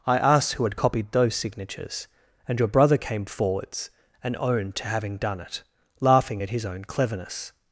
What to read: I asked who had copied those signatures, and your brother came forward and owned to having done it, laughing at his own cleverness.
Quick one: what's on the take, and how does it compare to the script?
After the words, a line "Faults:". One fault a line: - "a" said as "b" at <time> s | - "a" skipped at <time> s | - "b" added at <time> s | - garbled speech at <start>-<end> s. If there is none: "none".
I asked who had copied those signatures, and your brother came forwards and owned to having done it, laughing at his own cleverness.
Faults:
- "forward" said as "forwards" at 3.3 s